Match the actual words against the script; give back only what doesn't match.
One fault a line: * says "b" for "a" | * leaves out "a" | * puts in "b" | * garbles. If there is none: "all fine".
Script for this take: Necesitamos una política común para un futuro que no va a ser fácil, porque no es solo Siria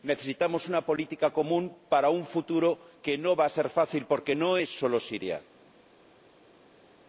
all fine